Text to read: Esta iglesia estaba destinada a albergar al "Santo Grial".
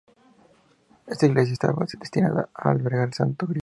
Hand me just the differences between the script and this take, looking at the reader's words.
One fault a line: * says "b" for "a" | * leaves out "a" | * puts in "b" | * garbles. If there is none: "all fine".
all fine